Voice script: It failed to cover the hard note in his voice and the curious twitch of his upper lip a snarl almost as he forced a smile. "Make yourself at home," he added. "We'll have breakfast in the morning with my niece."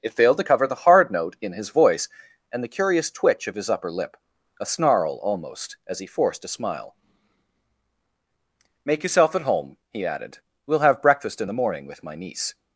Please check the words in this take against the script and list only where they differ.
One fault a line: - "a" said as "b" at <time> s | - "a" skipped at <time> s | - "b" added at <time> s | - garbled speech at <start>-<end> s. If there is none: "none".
none